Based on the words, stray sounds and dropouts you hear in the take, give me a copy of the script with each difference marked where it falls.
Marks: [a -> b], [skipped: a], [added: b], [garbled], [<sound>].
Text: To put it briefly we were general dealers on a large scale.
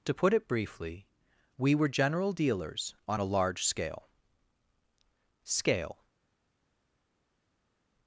To put it briefly we were general dealers on a large scale. [added: scale]